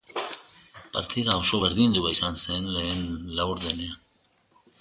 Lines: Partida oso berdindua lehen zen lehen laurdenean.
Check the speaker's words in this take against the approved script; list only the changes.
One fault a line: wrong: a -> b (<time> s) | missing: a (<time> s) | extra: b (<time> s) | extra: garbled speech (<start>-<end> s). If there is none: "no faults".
wrong: lehen -> izan (2.2 s)